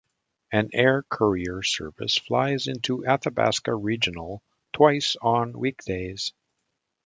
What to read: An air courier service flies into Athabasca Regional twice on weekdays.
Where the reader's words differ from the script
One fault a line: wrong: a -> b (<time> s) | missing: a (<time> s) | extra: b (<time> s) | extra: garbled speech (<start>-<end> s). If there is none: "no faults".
no faults